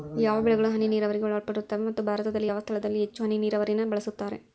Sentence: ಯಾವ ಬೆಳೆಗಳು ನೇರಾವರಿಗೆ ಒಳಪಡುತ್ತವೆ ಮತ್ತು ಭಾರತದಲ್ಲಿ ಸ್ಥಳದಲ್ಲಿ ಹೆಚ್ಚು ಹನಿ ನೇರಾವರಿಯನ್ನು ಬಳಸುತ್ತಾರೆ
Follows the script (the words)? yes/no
no